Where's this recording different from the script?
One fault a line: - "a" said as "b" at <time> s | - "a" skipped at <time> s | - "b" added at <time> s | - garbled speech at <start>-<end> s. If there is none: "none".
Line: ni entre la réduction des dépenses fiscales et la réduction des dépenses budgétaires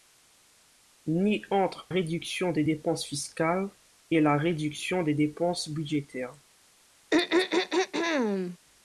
- "la" skipped at 1.9 s